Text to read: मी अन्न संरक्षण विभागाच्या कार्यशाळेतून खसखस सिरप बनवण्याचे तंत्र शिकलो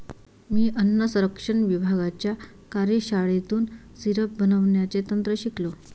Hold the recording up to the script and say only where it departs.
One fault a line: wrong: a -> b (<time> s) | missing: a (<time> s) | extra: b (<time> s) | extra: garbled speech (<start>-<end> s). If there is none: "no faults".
missing: खसखस (3.6 s)